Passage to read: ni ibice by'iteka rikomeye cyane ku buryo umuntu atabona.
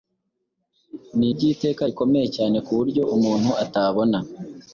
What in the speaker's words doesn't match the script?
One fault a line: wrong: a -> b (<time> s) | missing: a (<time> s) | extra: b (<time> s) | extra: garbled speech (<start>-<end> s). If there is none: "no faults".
missing: ibice (1.3 s)